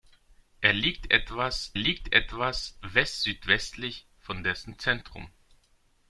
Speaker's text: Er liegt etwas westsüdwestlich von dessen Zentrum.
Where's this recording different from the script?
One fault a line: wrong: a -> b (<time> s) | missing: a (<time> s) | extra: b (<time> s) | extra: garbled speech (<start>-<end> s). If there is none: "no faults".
extra: liegt etwas (1.7 s)